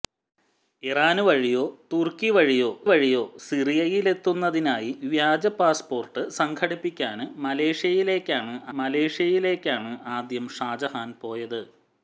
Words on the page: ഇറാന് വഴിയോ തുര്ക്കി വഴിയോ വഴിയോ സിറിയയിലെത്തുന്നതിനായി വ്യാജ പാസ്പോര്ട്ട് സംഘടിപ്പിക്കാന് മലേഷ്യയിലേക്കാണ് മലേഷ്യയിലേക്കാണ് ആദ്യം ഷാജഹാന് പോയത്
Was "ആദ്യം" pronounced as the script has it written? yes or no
yes